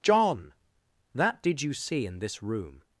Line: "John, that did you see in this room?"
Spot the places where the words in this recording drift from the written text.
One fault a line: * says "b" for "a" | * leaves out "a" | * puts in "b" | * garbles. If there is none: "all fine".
all fine